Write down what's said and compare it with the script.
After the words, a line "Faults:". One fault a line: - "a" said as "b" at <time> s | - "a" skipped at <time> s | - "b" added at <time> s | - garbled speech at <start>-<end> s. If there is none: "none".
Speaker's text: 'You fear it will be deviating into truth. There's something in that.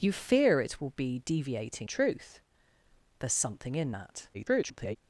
'You fear it will be deviating truth. There's something in that. [garbled]
Faults:
- "into" skipped at 1.9 s
- garbled speech at 4.3-5.0 s